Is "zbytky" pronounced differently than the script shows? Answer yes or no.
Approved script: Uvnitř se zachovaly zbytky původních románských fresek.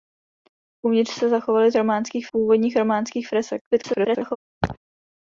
yes